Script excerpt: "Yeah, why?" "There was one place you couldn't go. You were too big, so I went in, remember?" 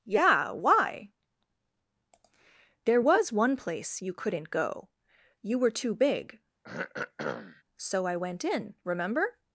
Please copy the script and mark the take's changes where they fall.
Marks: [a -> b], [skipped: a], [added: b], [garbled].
"Yeah, why?" "There was one place you couldn't go. You were too big, so I went in, remember?"